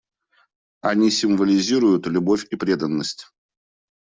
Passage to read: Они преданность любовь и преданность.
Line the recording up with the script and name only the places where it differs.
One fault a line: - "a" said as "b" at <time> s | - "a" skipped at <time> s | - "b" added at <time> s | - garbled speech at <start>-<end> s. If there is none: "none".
- "преданность" said as "символизируют" at 1.1 s